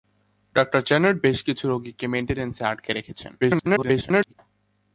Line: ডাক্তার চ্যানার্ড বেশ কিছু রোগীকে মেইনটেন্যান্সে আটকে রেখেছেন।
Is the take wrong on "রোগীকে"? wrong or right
right